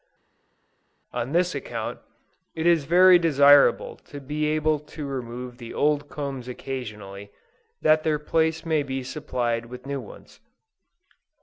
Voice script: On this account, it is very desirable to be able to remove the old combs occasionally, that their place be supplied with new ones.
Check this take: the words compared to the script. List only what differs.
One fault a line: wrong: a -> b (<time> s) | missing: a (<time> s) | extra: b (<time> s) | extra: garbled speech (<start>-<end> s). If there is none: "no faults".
extra: may (8.6 s)